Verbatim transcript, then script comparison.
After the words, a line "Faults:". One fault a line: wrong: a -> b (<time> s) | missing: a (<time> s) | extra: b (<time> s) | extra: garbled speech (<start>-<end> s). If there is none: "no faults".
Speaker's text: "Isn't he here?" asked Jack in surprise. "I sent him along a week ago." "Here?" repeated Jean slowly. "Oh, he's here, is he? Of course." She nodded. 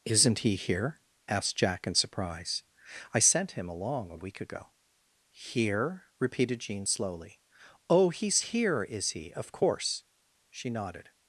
"Isn't he here?" asked Jack in surprise. "I sent him along a week ago." "Here?" repeated Jean slowly. "Oh, he's here, is he? Of course." She nodded.
Faults:
no faults